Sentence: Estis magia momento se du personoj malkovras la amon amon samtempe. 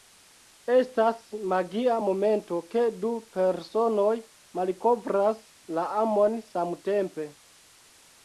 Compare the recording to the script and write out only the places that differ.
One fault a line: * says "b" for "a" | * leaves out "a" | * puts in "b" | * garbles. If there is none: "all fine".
* says "Estas" for "Estis"
* says "ke" for "se"
* leaves out "amon"